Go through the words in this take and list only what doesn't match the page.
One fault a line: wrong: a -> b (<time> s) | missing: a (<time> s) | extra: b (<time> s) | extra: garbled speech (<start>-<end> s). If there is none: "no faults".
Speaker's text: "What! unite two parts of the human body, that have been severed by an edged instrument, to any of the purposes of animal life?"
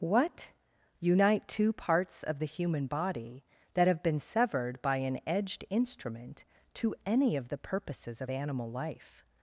no faults